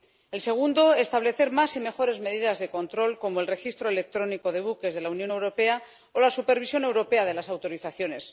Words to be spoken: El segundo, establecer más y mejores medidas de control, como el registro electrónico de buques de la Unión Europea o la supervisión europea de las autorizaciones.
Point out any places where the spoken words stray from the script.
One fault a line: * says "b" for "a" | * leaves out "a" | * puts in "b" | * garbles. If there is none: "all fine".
all fine